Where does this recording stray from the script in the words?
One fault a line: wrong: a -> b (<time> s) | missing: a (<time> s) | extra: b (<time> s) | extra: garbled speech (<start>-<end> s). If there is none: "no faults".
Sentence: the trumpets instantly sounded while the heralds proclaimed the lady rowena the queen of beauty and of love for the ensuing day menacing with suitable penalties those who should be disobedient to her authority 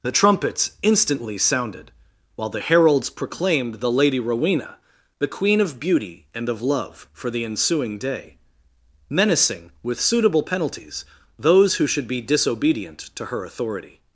no faults